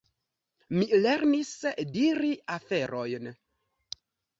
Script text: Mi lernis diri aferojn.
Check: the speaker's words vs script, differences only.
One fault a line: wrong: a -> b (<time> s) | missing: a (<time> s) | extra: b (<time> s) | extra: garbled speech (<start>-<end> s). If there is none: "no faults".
no faults